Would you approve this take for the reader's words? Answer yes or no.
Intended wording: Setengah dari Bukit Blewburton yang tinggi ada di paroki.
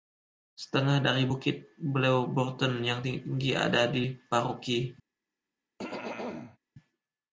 yes